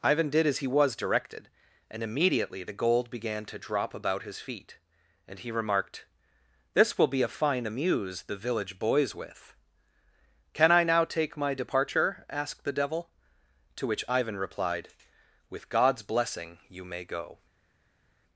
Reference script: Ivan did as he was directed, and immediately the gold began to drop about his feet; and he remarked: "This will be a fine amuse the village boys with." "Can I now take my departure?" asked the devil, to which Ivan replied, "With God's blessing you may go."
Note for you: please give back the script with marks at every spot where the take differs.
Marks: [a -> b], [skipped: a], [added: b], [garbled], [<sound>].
Ivan did as he was directed, and immediately the gold began to drop about his feet; and he remarked: "This will be a fine amuse the village boys with." "Can I now take my departure?" asked the devil, to which Ivan replied, "With God's blessing you may go."